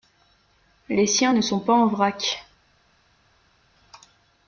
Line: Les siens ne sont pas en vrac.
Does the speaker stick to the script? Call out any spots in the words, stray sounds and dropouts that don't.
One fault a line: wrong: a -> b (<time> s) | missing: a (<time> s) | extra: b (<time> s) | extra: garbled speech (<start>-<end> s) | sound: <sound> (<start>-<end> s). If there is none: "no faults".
no faults